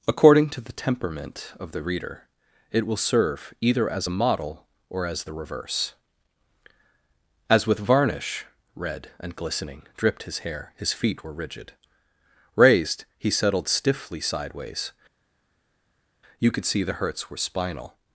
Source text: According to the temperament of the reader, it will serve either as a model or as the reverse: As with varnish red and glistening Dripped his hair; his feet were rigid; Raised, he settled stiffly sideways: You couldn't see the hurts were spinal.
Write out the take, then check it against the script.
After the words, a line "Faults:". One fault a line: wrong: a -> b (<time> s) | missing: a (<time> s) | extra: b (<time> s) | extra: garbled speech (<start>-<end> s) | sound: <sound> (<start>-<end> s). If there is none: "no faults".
According to the temperament of the reader, it will serve either as a model or as the reverse: As with varnish red and glistening Dripped his hair; his feet were rigid; Raised, he settled stiffly sideways: You could see the hurts were spinal.
Faults:
wrong: couldn't -> could (16.5 s)